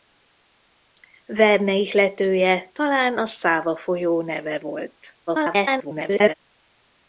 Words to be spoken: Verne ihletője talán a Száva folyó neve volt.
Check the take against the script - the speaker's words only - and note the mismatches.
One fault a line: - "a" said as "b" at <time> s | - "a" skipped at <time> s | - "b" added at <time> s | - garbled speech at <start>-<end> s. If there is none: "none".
- garbled speech at 5.3-6.3 s